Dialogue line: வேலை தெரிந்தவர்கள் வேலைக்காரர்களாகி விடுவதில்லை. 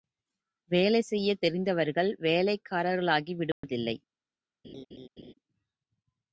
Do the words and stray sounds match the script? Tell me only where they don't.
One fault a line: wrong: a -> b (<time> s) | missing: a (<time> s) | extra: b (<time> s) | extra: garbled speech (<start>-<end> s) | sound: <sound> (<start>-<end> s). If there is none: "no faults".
extra: செய்யத் (1.0 s)
sound: dropout (3.5-3.6 s)
sound: laugh (4.6-5.3 s)